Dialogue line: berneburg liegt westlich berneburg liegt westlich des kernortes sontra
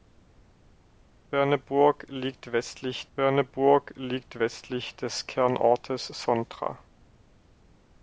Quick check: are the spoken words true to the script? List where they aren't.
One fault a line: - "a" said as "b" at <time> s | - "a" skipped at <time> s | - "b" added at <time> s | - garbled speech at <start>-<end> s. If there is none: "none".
none